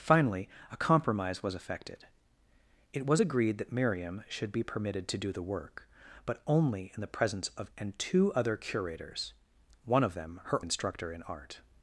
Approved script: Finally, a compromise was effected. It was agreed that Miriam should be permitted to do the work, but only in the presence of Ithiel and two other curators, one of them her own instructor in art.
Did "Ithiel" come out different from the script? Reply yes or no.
yes